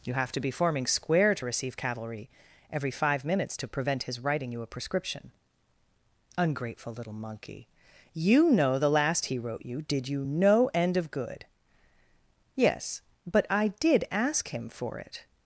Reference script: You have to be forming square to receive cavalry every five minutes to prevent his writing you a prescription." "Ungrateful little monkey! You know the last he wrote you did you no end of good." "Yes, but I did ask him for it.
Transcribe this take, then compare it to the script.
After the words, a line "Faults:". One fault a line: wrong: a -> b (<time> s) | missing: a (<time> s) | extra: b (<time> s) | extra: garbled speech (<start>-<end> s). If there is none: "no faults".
You have to be forming square to receive cavalry every five minutes to prevent his writing you a prescription." "Ungrateful little monkey! You know the last he wrote you did you no end of good." "Yes, but I did ask him for it.
Faults:
no faults